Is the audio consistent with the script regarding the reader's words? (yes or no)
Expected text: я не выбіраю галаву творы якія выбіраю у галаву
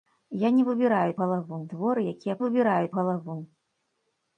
yes